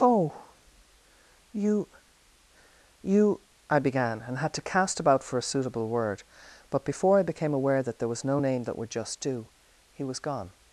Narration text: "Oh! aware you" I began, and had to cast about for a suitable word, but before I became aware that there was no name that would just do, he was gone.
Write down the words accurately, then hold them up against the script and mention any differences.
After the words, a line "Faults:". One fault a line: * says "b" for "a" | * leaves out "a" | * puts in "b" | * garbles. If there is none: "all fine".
"Oh! you you" I began, and had to cast about for a suitable word, but before I became aware that there was no name that would just do, he was gone.
Faults:
* says "you" for "aware"